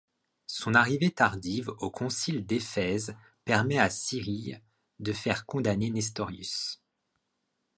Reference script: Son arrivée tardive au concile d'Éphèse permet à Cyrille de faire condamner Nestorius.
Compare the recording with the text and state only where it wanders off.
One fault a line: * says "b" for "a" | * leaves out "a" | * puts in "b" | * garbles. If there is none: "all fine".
all fine